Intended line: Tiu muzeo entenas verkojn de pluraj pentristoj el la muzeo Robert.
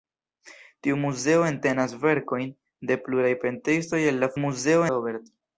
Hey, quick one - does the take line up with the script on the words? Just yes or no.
yes